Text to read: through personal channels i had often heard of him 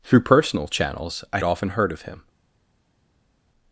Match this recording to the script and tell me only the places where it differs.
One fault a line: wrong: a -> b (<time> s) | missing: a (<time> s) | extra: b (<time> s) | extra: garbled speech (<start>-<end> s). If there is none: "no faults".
missing: had (1.4 s)